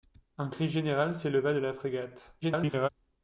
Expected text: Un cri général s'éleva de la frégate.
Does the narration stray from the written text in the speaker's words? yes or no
yes